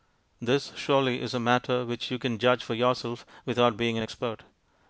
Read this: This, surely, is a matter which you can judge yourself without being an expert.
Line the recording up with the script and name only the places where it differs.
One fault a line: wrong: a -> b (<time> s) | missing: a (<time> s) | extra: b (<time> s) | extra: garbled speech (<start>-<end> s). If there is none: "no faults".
extra: for (2.6 s)